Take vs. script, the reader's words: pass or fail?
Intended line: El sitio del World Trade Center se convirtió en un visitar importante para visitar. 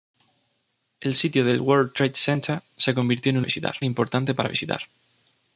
pass